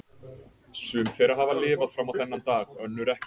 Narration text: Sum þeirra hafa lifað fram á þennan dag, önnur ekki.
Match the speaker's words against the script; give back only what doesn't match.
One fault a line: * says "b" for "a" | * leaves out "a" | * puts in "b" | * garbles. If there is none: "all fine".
all fine